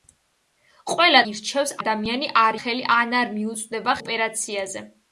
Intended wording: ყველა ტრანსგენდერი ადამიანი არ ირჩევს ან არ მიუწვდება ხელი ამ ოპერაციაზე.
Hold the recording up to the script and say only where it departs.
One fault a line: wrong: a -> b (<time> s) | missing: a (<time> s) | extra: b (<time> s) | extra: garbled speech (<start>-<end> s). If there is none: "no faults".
wrong: ტრანსგენდერი -> ირჩევს (1.3 s)
wrong: ირჩევს -> ხელი (2.6 s)
missing: ხელი ამ (4.0 s)